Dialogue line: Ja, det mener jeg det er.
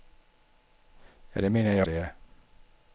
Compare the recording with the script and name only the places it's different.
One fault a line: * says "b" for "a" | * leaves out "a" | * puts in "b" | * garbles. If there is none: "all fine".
all fine